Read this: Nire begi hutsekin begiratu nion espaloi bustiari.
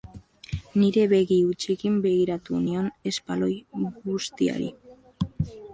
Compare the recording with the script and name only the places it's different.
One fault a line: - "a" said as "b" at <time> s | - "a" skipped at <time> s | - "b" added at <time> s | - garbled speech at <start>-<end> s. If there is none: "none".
none